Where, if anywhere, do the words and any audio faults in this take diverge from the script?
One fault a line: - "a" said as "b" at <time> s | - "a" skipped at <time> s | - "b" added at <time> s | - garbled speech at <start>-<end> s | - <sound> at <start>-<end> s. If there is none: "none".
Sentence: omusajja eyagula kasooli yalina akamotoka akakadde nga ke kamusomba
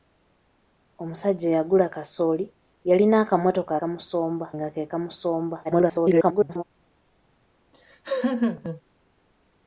- "akakadde" said as "kamusomba" at 3.8 s
- garbled speech at 5.6-6.6 s
- laugh at 7.7-8.8 s